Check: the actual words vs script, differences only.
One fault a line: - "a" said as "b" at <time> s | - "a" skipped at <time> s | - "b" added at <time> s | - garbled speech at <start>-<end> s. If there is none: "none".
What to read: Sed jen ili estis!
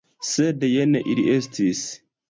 none